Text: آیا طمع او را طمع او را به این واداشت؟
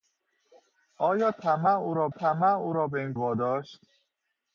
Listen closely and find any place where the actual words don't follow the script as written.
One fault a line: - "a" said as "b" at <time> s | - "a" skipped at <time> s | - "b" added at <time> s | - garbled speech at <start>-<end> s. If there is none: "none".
none